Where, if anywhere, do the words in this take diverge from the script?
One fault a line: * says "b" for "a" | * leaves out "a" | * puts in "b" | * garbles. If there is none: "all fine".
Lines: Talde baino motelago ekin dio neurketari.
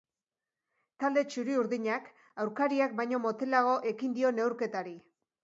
* puts in "txuri urdinak aurkariak"